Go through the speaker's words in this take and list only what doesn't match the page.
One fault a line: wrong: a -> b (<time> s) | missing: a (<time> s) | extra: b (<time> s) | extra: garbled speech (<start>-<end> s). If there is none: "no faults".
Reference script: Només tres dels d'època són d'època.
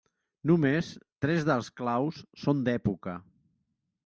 wrong: d'època -> claus (1.8 s)